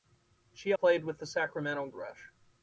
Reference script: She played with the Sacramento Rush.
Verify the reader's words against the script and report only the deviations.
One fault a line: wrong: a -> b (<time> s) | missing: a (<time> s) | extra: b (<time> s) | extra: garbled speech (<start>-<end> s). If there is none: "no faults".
no faults